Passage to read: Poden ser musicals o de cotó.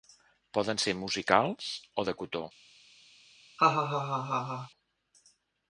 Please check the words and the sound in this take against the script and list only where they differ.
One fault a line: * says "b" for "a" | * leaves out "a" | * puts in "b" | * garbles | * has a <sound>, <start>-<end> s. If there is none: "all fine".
* has a laugh, 3.6-4.7 s